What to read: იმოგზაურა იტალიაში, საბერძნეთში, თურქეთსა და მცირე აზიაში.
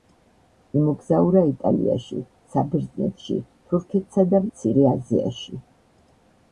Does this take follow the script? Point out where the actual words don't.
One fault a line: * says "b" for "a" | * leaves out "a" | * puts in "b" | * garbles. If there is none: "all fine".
all fine